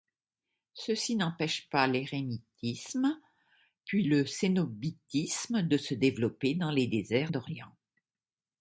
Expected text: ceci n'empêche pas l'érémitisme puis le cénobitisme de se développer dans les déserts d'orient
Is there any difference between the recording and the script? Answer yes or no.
no